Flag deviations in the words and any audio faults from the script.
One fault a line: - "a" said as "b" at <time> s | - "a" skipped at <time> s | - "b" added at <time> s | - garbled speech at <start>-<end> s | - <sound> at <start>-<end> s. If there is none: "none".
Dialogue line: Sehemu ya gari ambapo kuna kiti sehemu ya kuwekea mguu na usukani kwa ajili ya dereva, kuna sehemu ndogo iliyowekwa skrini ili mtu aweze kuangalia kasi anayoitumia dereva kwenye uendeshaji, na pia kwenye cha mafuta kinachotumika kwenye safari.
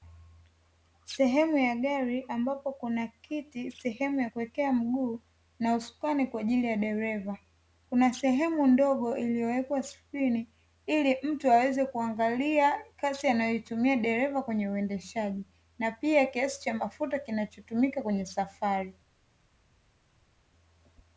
- "kwenye" said as "kiasi" at 16.3 s